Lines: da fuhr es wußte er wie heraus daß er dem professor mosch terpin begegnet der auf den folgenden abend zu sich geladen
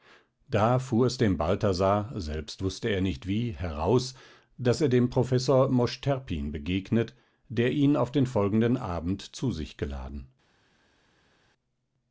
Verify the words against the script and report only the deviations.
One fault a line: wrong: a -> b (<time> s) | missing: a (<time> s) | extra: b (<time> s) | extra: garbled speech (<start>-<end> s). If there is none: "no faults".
extra: dem balthasar selbst (1.2 s)
extra: nicht (3.0 s)
extra: ihn (7.7 s)